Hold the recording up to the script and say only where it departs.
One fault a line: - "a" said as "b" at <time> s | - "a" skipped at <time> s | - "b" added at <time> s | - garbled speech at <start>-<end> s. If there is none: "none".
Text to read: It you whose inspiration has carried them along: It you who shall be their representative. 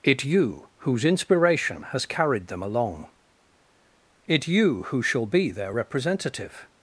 none